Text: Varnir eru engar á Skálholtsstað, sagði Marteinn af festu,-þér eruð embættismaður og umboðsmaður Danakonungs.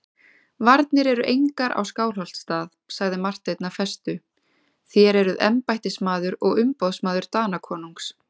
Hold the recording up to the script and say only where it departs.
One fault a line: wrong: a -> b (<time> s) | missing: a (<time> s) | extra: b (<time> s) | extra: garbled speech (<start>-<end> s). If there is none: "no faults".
no faults